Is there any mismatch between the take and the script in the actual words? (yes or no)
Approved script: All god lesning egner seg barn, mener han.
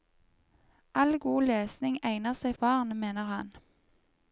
no